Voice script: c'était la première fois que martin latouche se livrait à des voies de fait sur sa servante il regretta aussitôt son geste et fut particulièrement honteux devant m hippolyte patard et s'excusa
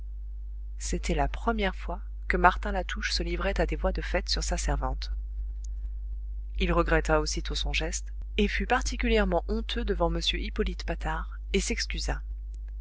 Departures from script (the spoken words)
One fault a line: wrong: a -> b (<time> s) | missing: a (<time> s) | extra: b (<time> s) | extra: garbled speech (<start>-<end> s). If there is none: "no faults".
no faults